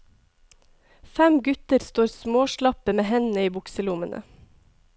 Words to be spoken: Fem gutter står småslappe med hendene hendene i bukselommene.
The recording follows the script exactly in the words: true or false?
false